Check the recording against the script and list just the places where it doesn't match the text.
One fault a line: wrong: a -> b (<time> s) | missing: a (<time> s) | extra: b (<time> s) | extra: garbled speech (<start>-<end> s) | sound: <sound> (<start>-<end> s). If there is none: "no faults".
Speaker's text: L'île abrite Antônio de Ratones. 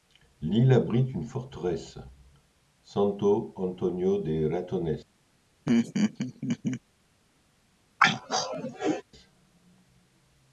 extra: une forteresse Santo (1.1 s)
sound: laugh (5.7-6.8 s)
sound: throat clearing (8.0-9.0 s)